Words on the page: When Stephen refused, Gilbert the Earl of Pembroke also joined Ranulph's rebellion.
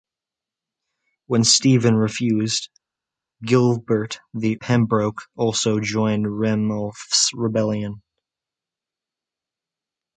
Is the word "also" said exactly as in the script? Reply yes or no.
yes